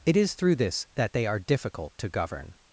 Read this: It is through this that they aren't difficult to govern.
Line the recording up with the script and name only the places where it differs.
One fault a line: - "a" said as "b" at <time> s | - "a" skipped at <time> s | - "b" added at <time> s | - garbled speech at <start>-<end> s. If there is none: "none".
- "aren't" said as "are" at 1.3 s